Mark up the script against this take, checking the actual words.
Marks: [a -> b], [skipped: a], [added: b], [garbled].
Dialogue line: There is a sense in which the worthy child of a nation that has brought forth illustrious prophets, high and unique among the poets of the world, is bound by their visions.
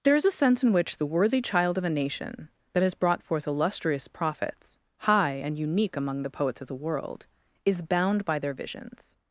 There is a sense in which the worthy child of a nation that has brought forth illustrious prophets, high and unique among the poets of the world, is bound by their visions.